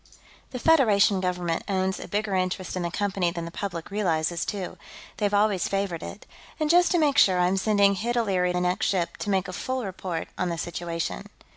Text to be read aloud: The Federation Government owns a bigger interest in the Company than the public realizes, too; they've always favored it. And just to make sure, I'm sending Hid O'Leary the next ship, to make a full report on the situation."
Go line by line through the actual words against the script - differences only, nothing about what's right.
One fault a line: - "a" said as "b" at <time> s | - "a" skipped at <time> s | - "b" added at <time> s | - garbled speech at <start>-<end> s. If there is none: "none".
none